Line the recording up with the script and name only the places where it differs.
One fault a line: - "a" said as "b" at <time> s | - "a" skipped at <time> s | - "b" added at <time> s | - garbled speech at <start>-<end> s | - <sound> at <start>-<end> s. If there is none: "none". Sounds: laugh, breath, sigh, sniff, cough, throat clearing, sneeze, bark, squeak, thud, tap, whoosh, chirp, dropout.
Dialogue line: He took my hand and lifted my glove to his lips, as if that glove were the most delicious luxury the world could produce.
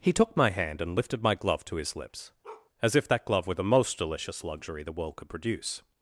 - bark at 2.4-2.7 s